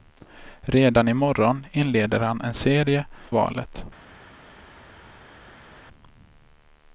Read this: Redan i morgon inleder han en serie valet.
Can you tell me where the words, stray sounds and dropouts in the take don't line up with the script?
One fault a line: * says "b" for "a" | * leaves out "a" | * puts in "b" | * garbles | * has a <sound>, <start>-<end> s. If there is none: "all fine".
all fine